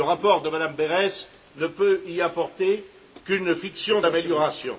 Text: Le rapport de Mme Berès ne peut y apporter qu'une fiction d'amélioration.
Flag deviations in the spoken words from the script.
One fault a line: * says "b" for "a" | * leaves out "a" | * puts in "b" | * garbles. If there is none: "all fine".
all fine